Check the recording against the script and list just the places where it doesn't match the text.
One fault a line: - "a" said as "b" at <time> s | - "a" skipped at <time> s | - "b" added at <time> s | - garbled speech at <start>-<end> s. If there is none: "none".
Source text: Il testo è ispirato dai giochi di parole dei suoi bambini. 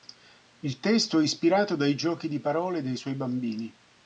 none